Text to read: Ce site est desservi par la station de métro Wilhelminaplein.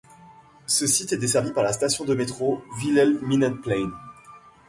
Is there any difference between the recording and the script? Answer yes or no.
no